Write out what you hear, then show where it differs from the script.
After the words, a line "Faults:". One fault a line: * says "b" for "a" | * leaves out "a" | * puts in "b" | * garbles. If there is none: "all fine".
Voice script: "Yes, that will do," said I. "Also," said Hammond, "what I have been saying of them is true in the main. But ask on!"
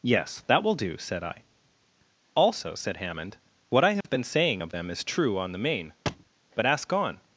"Yes, that will do," said I. "Also," said Hammond, "what I have been saying of them is true on the main. But ask on!"
Faults:
* says "on" for "in"